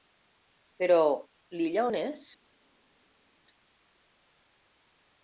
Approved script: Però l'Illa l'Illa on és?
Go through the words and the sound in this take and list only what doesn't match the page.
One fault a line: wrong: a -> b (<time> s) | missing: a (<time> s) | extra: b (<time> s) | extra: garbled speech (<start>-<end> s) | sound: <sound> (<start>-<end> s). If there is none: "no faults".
missing: l'Illa (1.9 s)